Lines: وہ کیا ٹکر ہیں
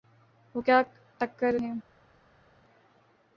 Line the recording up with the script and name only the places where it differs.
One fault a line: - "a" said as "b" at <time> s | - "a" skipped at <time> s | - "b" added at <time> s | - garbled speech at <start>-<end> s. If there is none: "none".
none